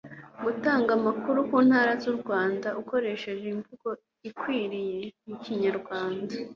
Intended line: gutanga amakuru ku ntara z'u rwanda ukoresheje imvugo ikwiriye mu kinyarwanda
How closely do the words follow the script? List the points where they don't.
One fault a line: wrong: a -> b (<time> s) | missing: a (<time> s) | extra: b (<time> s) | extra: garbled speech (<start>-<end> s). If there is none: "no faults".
no faults